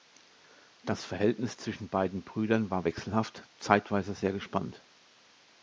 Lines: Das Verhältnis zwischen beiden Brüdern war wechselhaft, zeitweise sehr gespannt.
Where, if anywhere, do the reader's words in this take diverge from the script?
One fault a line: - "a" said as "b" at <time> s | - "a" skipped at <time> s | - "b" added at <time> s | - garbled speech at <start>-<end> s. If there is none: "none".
none